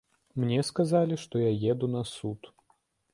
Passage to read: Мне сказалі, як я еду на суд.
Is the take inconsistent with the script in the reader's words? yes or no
yes